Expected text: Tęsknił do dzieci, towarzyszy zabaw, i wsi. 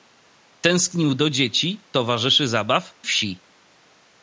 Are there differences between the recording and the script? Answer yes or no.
yes